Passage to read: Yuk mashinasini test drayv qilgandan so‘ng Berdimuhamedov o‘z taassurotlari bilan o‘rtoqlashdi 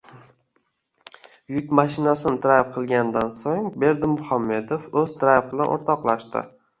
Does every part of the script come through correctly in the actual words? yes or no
no